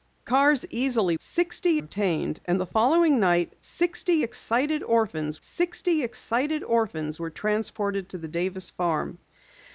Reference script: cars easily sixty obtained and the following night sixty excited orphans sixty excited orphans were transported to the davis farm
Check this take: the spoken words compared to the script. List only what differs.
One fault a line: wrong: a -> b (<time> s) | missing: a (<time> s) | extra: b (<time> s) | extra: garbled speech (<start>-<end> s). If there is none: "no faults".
no faults